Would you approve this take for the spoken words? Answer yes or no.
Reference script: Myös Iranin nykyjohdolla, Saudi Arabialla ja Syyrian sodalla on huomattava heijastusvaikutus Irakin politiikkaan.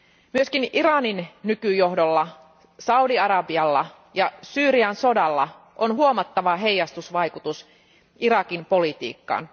yes